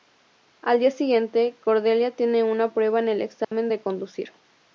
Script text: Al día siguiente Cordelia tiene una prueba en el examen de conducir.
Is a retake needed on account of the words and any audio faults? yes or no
yes